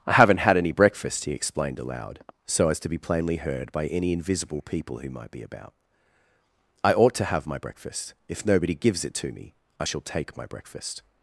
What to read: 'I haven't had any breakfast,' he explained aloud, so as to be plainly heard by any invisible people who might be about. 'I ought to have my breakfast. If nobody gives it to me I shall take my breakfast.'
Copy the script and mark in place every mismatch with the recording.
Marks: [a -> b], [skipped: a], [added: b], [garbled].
'I haven't had any breakfast,' he explained aloud, so as to be plainly heard by any invisible people who might be about. 'I ought to have my breakfast. If nobody gives it to me I shall take my breakfast.'